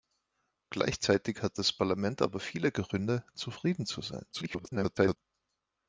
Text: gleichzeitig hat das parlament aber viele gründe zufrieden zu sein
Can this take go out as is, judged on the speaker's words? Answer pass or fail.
fail